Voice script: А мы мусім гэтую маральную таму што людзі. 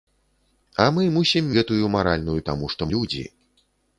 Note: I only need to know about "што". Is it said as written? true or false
true